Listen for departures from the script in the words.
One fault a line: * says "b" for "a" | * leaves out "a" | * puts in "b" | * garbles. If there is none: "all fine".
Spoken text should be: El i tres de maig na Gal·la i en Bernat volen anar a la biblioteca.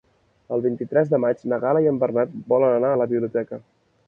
* puts in "vint"